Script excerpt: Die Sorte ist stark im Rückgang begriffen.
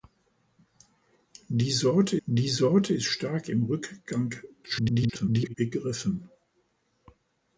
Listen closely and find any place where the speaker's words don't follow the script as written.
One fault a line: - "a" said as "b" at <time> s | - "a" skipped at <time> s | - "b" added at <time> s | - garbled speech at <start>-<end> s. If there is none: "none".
- "die Sorte" added at 2.2 s
- garbled speech at 4.6-5.6 s